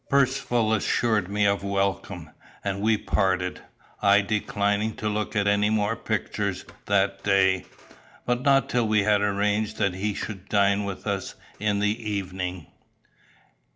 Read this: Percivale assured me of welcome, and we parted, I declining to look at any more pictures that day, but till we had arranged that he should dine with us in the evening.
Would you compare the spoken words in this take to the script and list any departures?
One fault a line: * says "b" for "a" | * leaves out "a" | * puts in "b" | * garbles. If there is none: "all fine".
* puts in "not"